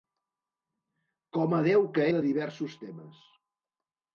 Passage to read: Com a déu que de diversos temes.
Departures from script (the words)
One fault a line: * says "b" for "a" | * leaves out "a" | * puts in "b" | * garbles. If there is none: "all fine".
all fine